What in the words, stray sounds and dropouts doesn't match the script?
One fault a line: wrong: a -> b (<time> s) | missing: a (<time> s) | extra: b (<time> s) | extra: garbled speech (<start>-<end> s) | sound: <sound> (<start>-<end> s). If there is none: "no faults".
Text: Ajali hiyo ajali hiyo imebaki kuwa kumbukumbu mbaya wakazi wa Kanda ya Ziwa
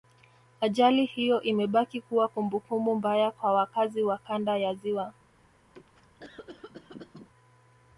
missing: ajali hiyo (1.4 s)
extra: kwa (3.3 s)
sound: cough (5.7-7.3 s)